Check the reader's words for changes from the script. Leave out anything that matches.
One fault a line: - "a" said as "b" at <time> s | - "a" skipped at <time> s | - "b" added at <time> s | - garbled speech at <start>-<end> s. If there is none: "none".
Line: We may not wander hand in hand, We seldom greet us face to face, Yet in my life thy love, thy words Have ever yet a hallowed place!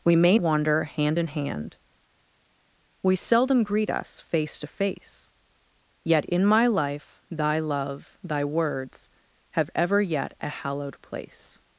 - "not" skipped at 0.4 s